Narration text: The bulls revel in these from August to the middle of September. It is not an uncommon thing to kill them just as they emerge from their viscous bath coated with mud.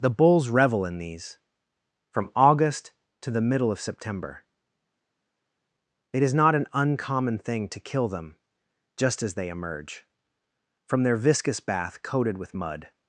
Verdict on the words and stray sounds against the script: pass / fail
pass